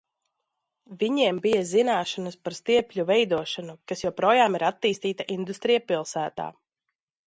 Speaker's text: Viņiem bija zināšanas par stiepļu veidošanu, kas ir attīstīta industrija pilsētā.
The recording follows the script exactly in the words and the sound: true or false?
false